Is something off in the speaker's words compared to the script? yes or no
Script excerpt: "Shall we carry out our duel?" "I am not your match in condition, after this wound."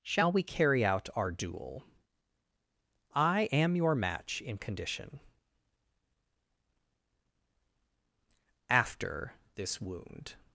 yes